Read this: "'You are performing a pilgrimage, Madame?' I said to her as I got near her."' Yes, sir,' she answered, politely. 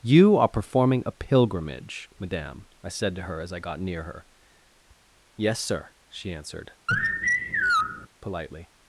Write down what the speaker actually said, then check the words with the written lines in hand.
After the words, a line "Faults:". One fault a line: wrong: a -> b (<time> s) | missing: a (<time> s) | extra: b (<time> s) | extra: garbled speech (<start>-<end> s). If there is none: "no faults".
"'You are performing a pilgrimage, Madame?' I said to her as I got near her."' Yes, sir,' she answered, politely.
Faults:
no faults